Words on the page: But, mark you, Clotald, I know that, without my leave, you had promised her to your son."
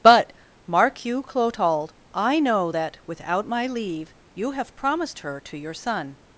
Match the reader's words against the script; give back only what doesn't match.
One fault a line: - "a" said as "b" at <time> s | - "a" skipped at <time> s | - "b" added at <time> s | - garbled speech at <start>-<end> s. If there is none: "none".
- "had" said as "have" at 4.5 s